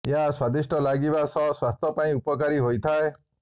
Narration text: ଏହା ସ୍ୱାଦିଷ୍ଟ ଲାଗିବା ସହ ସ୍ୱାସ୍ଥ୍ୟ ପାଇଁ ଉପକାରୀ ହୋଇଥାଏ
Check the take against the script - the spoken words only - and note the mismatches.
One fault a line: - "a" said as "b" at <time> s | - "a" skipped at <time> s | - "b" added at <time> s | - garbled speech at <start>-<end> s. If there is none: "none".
none